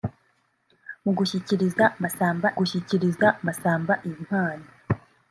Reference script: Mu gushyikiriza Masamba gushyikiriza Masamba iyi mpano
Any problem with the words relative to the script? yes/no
no